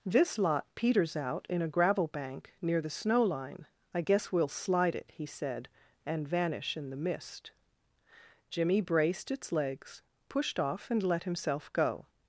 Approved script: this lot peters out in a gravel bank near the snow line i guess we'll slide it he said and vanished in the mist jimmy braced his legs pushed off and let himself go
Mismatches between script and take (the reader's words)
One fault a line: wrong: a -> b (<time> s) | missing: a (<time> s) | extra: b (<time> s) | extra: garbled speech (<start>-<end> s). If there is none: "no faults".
wrong: vanished -> vanish (6.3 s)
wrong: his -> its (9.3 s)